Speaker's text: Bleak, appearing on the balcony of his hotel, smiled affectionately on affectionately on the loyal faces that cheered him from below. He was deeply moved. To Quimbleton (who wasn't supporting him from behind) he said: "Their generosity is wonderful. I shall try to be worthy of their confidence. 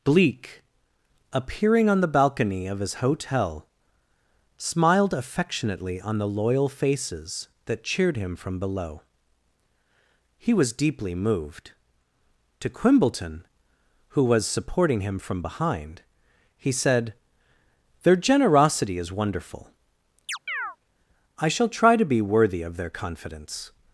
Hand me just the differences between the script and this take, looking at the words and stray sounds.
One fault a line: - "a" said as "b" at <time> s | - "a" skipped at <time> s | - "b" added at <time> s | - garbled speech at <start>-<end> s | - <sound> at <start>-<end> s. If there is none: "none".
- "affectionately on" skipped at 6.2 s
- "wasn't" said as "was" at 14.2 s
- chirp at 20.3-20.8 s